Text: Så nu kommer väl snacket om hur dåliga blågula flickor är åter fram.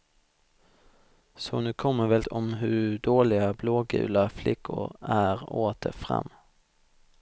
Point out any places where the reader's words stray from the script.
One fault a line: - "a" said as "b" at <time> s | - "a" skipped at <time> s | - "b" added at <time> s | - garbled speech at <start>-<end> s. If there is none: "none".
- "snacket" skipped at 2.2 s